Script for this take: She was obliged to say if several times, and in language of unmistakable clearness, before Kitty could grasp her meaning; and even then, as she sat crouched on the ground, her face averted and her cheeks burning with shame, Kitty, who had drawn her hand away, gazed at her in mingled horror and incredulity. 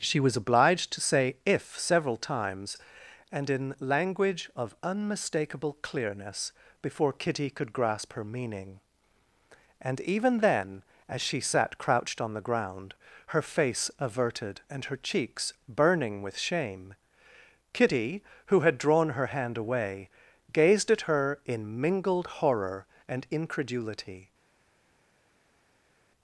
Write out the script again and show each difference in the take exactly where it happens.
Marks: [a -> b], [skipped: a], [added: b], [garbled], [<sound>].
She was obliged to say if several times, and in language of unmistakable clearness, before Kitty could grasp her meaning; and even then, as she sat crouched on the ground, her face averted and her cheeks burning with shame, Kitty, who had drawn her hand away, gazed at her in mingled horror and incredulity.